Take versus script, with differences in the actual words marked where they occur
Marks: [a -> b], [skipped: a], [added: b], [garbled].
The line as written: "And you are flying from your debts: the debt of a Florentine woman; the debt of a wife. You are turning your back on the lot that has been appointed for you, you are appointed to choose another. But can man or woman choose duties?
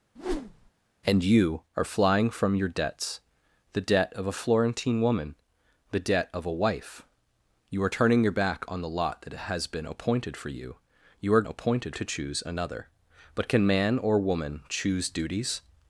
"And you are flying from your debts: the debt of a Florentine woman; the debt of a wife. You are turning your back on the lot that has been appointed for you, you are appointed to choose another. But can man or woman choose duties?